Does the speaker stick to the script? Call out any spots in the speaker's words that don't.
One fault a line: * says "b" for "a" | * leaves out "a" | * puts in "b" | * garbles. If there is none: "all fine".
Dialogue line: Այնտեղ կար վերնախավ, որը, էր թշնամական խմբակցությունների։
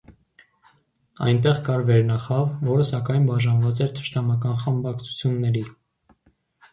* puts in "սակայն բաժանված"